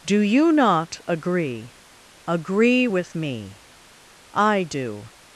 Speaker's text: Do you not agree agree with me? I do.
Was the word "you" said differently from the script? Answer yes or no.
no